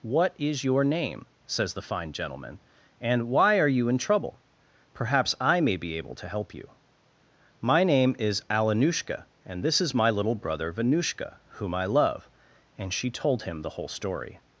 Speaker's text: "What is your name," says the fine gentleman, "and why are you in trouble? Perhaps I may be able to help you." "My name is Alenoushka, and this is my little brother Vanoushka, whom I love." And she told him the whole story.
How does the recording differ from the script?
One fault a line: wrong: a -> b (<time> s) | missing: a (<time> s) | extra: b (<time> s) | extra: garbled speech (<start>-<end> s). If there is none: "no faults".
no faults